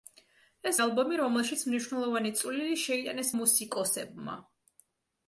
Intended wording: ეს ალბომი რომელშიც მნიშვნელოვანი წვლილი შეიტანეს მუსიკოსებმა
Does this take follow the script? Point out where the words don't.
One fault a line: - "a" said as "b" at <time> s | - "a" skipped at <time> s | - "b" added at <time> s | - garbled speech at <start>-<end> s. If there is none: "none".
none